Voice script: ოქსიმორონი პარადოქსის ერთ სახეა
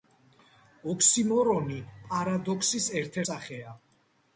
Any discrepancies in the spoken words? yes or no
no